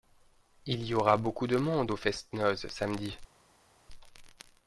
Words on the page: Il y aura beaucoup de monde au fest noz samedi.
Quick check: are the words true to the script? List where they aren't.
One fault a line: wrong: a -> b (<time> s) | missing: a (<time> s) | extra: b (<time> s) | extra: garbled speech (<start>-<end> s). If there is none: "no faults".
no faults